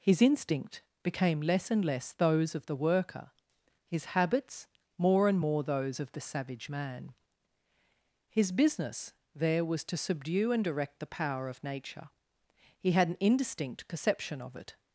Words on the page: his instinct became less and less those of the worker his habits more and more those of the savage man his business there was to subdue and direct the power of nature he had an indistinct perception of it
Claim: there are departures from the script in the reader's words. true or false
false